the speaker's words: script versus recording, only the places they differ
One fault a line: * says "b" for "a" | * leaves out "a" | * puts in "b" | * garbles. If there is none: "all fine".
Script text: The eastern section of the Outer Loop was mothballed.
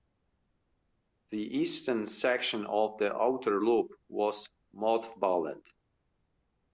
all fine